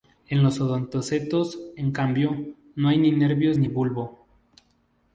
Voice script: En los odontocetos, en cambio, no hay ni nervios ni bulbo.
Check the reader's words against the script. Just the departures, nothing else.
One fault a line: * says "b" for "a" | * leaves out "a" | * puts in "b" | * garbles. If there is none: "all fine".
all fine